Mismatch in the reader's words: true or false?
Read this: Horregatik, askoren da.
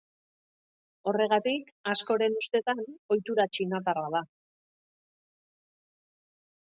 true